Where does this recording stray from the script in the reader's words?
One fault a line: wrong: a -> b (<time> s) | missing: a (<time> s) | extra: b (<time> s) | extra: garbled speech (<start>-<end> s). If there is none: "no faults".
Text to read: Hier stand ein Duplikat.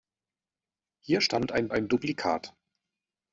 extra: ein (1.7 s)